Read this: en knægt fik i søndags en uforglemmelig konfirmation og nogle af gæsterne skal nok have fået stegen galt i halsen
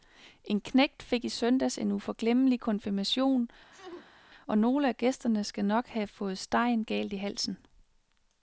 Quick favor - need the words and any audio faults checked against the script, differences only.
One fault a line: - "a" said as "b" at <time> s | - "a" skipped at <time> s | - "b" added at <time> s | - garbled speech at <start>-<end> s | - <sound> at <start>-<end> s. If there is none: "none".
- sneeze at 3.7-4.2 s